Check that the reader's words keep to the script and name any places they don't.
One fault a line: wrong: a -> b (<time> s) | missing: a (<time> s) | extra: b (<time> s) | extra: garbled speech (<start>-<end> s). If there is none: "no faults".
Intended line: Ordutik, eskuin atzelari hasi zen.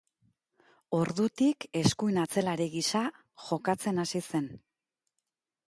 extra: gisa jokatzen (2.8 s)